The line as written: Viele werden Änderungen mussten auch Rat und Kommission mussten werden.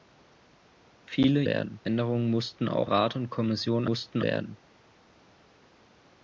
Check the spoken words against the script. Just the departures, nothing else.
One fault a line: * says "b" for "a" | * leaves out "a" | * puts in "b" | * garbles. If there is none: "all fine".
all fine